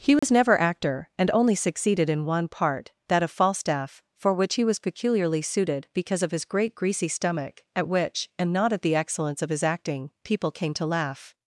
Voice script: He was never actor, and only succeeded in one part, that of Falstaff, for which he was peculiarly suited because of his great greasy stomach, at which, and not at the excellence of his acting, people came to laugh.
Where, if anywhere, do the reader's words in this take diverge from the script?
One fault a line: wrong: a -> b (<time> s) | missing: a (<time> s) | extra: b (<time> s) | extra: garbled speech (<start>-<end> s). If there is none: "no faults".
no faults